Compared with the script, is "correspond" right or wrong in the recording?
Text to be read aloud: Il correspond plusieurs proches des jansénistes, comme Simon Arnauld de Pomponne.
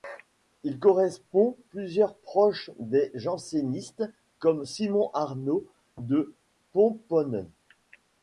right